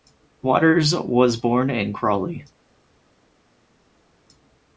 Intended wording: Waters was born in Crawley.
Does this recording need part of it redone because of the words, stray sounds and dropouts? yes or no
no